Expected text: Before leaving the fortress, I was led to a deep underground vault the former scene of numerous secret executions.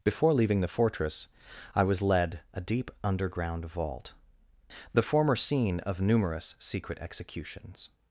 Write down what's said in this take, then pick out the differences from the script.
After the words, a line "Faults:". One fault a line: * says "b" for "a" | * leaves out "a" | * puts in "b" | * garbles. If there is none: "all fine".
Before leaving the fortress, I was led a deep underground vault the former scene of numerous secret executions.
Faults:
* leaves out "to"